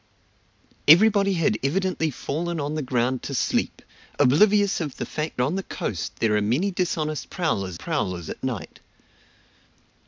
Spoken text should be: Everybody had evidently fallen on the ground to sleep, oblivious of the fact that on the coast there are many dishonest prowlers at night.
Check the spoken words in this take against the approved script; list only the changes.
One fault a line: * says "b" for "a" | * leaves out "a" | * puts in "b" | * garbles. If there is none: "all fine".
* leaves out "that"
* puts in "prowlers"